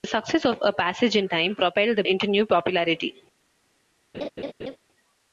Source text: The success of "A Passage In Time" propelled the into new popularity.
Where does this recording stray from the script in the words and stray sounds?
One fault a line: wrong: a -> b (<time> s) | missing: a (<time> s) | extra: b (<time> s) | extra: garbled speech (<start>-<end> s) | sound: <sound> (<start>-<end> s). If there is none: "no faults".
sound: laugh (4.1-4.8 s)